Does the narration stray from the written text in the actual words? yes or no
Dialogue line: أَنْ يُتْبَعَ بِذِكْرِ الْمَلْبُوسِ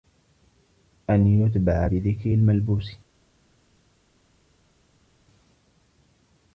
no